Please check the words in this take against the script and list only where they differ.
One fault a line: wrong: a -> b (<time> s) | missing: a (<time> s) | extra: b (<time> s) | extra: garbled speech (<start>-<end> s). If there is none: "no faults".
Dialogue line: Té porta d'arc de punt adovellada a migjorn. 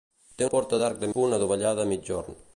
no faults